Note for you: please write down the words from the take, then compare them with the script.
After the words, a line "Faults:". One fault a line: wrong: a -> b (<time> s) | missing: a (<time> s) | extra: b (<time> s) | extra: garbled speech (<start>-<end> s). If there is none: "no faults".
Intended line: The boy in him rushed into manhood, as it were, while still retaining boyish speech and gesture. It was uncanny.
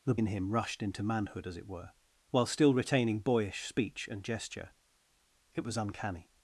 The in him rushed into manhood, as it were, while still retaining boyish speech and gesture. It was uncanny.
Faults:
missing: boy (0.1 s)